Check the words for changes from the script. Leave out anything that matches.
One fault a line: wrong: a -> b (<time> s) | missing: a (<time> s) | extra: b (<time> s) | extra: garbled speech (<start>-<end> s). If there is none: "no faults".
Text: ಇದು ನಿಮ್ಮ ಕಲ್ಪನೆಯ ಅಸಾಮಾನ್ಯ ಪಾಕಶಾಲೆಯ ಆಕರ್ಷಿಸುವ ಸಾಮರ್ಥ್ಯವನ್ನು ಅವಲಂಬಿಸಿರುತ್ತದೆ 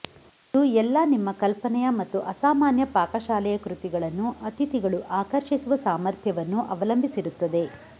extra: ಎಲ್ಲಾ (0.8 s)
extra: ಮತ್ತು (2.0 s)
extra: ಕೃತಿಗಳನ್ನು ಅತಿಥಿಗಳು (3.6 s)